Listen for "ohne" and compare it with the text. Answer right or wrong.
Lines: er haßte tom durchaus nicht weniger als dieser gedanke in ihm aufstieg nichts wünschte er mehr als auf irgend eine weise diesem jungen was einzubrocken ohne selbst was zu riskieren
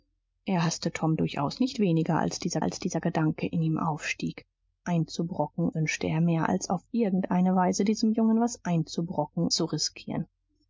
wrong